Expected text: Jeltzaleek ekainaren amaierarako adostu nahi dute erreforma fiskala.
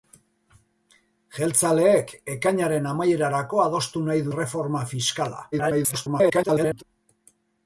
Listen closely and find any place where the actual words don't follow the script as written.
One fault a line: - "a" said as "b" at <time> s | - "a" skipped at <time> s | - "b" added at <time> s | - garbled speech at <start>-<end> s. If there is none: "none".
- "dute" skipped at 4.2 s
- garbled speech at 5.5-6.8 s